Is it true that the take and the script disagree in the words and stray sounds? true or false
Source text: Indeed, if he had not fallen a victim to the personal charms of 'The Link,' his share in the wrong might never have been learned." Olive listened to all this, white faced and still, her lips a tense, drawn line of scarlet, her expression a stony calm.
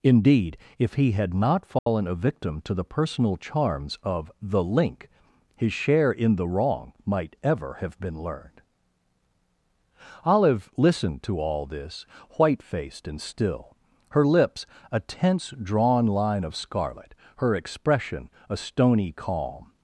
true